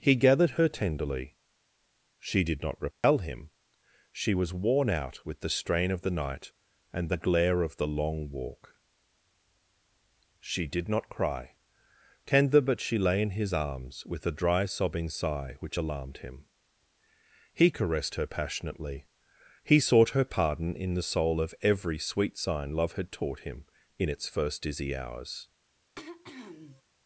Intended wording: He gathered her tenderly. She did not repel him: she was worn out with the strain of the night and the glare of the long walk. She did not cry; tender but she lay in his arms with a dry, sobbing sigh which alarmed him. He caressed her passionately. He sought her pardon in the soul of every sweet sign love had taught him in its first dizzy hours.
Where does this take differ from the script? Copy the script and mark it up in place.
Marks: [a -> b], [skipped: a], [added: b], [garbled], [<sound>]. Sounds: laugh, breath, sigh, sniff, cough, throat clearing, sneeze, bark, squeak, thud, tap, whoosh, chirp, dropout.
He gathered her tenderly. She did not repel [dropout] him: she was worn out with the strain of the night and the glare of the long walk. She did not cry; tender but she lay in his arms with a dry, sobbing sigh which alarmed him. He caressed her passionately. He sought her pardon in the soul of every sweet sign love had taught him in its first dizzy hours. [throat clearing]